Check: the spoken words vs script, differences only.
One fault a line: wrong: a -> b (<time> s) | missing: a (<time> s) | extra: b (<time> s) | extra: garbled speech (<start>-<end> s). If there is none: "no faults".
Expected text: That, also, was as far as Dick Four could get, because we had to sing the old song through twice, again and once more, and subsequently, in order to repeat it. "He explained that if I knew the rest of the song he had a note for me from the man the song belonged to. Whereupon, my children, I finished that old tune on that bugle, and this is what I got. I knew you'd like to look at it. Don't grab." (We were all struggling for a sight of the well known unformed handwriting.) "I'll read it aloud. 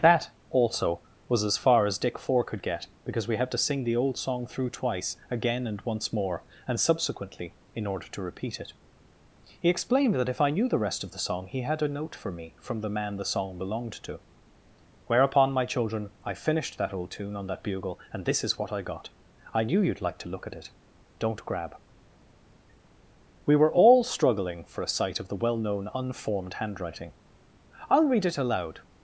no faults